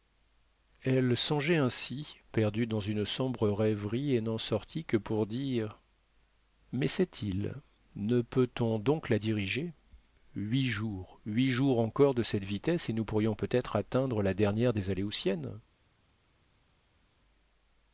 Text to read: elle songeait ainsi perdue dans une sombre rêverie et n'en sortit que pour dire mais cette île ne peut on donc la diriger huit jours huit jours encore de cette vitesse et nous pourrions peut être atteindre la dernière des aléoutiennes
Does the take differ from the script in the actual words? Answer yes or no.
no